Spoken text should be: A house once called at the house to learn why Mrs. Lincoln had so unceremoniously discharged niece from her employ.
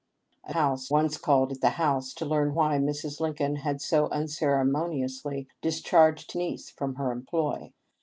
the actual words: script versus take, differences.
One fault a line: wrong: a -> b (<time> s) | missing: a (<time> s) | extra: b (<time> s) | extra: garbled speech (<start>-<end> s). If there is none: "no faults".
no faults